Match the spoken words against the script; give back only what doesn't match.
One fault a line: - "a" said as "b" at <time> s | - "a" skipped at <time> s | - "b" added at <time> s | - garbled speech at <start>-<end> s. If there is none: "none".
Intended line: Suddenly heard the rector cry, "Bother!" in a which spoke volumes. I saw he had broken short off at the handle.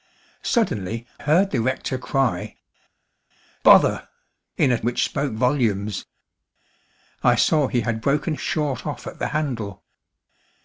none